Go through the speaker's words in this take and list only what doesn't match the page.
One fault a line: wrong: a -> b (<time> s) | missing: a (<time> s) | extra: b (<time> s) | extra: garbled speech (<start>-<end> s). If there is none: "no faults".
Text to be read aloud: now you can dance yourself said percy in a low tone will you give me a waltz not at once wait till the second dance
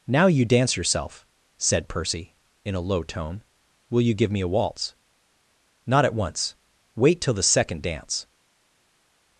missing: can (0.5 s)